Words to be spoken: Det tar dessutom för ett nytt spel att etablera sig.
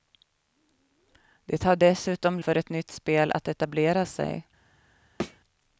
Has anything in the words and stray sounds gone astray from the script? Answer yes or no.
yes